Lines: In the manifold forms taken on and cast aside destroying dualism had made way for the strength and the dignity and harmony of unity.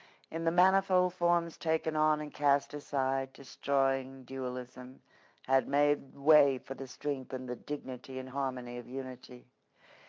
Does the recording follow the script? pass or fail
pass